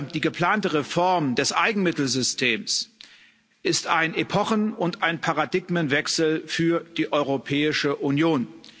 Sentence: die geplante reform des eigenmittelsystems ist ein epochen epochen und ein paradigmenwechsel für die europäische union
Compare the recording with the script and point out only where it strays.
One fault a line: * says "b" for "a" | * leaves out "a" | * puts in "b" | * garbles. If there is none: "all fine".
* leaves out "epochen"